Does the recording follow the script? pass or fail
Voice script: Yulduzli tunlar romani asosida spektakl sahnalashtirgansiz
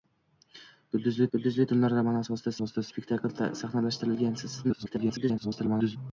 fail